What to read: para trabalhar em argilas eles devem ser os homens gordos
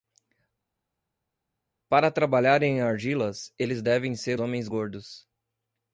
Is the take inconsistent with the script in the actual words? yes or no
yes